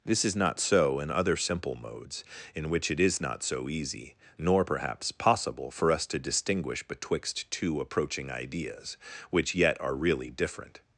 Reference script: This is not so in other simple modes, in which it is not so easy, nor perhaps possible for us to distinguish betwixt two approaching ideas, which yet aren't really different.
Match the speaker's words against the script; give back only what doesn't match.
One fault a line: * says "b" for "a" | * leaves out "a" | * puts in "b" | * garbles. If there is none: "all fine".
* says "are" for "aren't"